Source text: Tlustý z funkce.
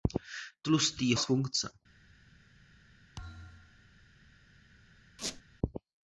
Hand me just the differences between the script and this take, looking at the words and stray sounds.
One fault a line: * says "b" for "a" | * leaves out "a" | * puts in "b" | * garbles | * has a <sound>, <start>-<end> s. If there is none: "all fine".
* has a thud, 3.2-3.9 s
* has a squeak, 5.2-5.4 s